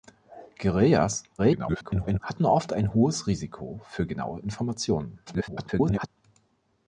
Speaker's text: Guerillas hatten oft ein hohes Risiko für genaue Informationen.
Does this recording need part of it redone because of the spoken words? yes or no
yes